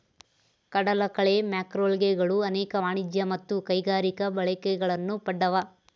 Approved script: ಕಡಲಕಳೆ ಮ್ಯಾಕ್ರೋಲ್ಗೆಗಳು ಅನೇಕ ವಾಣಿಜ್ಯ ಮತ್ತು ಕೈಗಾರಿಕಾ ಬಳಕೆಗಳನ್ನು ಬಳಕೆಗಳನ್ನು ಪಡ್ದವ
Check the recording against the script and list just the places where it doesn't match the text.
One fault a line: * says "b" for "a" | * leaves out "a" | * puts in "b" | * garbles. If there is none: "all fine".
* leaves out "ಬಳಕೆಗಳನ್ನು"